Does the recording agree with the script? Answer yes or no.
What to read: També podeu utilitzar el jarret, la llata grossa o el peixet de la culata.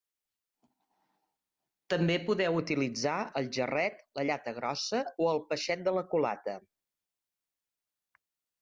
yes